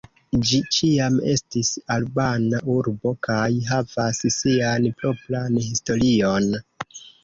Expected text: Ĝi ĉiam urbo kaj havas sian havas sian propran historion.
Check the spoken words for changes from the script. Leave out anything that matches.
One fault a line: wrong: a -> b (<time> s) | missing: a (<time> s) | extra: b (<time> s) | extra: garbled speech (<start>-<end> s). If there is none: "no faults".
extra: estis albana (1.3 s)
missing: havas sian (4.9 s)